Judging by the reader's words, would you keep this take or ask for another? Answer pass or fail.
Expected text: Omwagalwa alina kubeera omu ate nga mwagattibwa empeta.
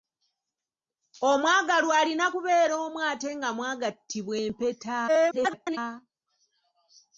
fail